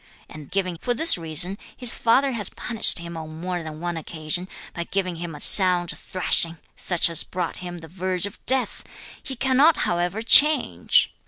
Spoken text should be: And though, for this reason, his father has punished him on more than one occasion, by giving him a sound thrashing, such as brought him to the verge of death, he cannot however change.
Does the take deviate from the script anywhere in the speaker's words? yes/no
yes